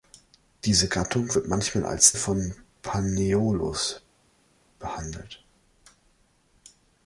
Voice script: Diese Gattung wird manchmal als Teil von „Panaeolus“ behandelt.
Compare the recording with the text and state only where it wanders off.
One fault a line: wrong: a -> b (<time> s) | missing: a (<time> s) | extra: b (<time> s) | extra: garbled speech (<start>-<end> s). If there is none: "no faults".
missing: Teil (2.1 s)